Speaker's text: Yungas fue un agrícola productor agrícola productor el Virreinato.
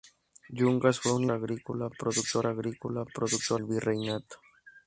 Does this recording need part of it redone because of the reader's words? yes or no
no